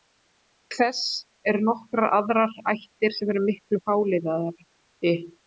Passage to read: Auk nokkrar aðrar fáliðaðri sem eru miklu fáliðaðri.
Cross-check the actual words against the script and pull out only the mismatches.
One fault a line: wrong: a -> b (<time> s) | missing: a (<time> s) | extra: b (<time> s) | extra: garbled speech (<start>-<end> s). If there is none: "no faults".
extra: þess eru (0.8 s)
wrong: fáliðaðri -> ættir (2.7 s)